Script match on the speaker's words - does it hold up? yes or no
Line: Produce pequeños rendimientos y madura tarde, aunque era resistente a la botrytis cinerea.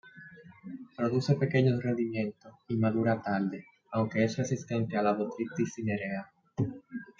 no